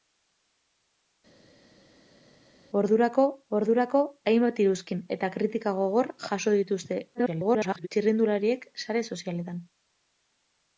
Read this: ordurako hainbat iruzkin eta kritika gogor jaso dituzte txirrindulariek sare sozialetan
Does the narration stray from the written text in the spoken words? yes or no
yes